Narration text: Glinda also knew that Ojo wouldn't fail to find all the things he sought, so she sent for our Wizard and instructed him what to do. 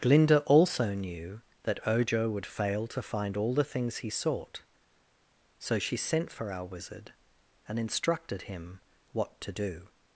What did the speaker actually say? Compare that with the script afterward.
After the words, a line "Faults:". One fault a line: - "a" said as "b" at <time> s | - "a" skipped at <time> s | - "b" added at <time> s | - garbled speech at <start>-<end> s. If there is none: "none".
Glinda also knew that Ojo would fail to find all the things he sought, so she sent for our Wizard and instructed him what to do.
Faults:
- "wouldn't" said as "would" at 2.3 s